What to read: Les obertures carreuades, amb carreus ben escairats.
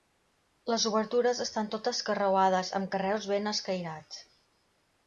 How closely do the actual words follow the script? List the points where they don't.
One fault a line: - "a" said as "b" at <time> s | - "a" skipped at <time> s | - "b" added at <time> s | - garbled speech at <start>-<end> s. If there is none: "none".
- "estan totes" added at 1.4 s